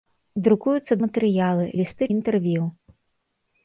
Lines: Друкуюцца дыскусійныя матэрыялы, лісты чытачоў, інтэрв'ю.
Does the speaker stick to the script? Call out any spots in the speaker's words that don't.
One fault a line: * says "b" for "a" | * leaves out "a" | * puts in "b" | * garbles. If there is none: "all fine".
* leaves out "дыскусійныя"
* leaves out "чытачоў"